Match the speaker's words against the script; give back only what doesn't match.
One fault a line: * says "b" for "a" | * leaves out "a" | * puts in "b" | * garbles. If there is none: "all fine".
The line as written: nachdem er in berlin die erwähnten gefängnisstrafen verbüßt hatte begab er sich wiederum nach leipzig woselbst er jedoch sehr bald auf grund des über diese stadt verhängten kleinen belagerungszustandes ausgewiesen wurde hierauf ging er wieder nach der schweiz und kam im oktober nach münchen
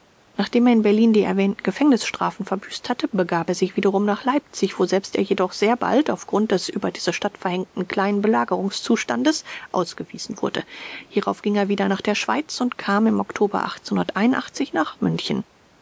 all fine